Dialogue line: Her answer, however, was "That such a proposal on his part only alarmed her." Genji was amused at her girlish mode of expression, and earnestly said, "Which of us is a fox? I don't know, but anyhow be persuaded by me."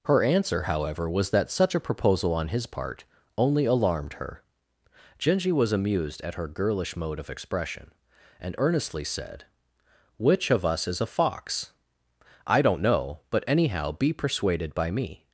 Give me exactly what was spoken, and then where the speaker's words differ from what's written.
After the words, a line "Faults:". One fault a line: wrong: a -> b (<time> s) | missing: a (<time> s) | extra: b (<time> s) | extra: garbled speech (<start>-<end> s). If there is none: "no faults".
Her answer, however, was "That such a proposal on his part only alarmed her." Genji was amused at her girlish mode of expression, and earnestly said, "Which of us is a fox? I don't know, but anyhow be persuaded by me."
Faults:
no faults